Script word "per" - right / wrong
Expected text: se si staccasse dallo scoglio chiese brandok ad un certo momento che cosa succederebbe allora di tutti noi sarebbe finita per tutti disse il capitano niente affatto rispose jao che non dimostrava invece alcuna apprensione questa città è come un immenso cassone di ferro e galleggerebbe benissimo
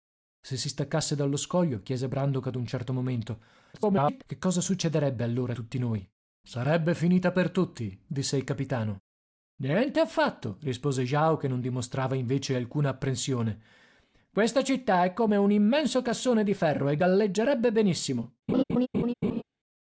right